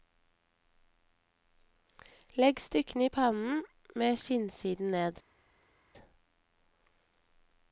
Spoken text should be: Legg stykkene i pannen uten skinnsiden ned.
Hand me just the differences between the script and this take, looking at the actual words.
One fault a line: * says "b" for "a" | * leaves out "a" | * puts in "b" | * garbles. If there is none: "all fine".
* says "med" for "uten"